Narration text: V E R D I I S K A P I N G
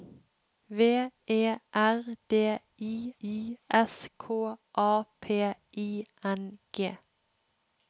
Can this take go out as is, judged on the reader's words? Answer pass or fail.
pass